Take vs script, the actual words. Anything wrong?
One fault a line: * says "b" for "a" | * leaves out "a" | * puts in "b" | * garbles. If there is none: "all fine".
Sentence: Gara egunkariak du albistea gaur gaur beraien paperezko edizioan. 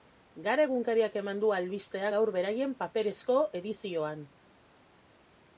* puts in "eman"
* leaves out "gaur"